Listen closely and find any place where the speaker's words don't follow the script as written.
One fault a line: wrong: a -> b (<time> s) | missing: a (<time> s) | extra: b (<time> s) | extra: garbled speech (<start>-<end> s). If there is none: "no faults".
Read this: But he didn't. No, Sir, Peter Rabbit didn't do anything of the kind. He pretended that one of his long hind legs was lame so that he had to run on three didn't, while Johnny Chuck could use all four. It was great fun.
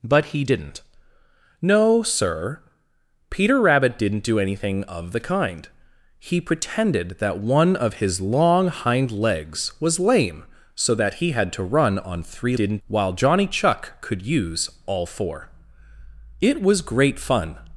no faults